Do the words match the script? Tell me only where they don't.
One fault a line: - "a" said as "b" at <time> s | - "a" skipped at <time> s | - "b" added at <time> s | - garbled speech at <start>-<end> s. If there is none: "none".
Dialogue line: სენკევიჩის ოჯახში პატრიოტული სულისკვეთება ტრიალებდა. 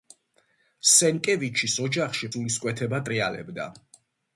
- "პატრიოტული" skipped at 2.3 s